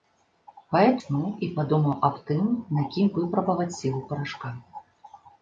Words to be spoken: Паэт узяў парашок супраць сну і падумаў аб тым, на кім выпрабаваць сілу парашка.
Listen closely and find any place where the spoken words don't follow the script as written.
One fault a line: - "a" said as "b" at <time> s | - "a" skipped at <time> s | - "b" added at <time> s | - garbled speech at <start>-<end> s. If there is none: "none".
- "узяў парашок супраць" skipped at 1.0 s